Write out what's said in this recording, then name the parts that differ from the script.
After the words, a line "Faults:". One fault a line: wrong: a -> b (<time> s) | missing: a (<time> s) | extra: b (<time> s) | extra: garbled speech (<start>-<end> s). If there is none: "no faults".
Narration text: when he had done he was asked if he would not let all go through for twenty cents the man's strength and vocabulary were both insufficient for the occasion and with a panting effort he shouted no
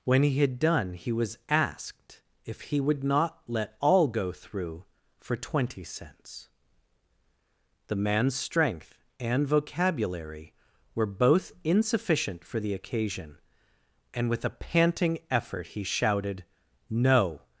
when he had done he was asked if he would not let all go through for twenty cents the man's strength and vocabulary were both insufficient for the occasion and with a panting effort he shouted no
Faults:
no faults